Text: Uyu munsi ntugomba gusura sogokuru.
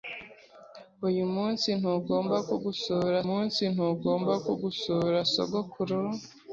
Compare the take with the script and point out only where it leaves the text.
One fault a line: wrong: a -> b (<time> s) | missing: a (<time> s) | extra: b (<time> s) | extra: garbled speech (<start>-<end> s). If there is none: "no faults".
extra: munsi ntugomba gusura (3.3 s)